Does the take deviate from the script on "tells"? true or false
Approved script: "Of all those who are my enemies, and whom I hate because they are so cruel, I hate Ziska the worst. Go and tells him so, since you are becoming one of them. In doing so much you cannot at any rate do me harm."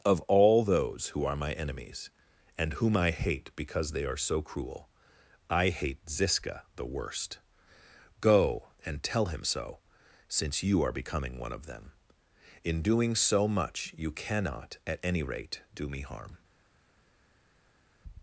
true